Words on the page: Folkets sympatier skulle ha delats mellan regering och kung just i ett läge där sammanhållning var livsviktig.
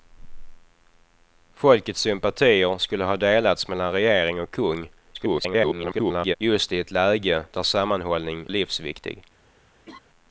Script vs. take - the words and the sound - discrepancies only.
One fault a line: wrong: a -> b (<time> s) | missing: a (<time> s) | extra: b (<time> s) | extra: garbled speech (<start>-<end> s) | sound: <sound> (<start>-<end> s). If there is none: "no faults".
extra: garbled speech (5.1-6.4 s)
missing: var (8.5 s)
sound: laugh (9.9-10.0 s)